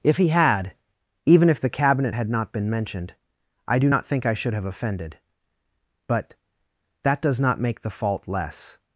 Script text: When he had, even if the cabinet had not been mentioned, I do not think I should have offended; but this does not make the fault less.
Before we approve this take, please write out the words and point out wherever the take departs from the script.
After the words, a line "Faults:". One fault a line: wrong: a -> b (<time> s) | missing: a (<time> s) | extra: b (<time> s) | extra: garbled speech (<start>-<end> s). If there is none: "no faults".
If he had, even if the cabinet had not been mentioned, I do not think I should have offended; but that does not make the fault less.
Faults:
wrong: When -> If (0.0 s)
wrong: this -> that (7.0 s)